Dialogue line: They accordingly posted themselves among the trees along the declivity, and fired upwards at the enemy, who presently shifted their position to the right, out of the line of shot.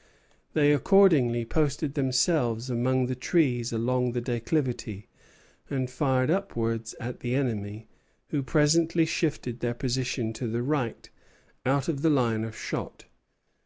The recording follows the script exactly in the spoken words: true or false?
true